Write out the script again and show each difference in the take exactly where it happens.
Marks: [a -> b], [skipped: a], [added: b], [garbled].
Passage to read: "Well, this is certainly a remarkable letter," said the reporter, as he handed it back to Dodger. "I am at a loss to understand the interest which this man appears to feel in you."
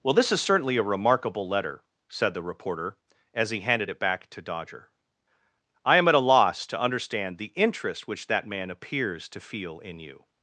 "Well, this is certainly a remarkable letter," said the reporter, as he handed it back to Dodger. "I am at a loss to understand the interest which [this -> that] man appears to feel in you."